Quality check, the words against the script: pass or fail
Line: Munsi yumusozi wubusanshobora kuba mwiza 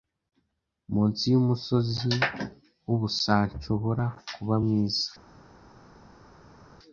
pass